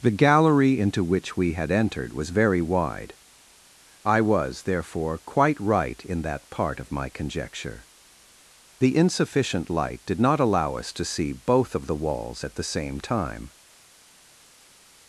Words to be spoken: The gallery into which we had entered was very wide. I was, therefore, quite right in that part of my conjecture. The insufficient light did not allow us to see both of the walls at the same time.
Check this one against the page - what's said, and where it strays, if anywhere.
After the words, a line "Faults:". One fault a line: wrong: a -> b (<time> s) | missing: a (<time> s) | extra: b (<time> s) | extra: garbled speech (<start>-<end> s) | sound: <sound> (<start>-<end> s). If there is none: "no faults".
The gallery into which we had entered was very wide. I was, therefore, quite right in that part of my conjecture. The insufficient light did not allow us to see both of the walls at the same time.
Faults:
no faults